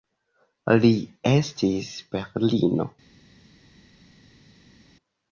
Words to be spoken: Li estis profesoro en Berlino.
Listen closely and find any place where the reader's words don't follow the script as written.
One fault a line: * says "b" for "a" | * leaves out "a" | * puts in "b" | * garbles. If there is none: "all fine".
* leaves out "profesoro en"